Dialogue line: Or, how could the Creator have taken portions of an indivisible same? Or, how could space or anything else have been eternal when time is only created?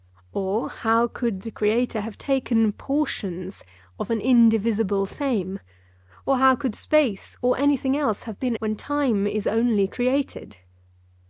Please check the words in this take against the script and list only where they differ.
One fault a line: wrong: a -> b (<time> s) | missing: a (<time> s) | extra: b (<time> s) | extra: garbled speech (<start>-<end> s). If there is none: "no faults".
missing: eternal (8.6 s)